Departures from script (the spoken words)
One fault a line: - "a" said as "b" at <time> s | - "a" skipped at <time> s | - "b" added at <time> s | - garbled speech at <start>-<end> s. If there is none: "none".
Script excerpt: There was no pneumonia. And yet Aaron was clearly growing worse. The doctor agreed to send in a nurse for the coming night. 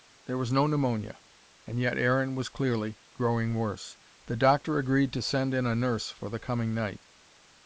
none